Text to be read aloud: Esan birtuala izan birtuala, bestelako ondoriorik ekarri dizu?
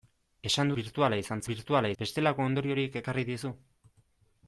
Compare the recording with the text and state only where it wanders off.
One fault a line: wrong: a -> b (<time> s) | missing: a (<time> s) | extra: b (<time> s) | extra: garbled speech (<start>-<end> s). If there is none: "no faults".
no faults